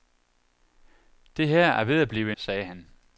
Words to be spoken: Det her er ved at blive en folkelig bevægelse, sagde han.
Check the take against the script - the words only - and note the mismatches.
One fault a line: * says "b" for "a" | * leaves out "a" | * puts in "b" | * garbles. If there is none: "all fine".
* leaves out "en folkelig bevægelse"